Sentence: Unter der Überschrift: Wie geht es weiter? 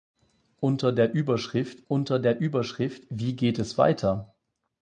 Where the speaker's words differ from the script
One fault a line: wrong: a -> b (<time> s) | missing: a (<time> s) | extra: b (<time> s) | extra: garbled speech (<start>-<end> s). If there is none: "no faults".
extra: unter der Überschrift (1.9 s)